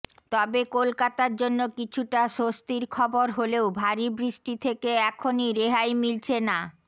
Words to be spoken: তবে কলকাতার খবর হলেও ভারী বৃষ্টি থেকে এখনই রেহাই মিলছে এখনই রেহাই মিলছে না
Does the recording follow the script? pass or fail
fail